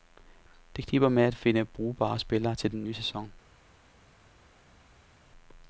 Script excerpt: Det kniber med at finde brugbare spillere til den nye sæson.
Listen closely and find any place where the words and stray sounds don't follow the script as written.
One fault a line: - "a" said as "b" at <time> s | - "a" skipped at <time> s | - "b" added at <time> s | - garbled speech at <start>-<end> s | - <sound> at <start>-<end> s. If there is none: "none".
none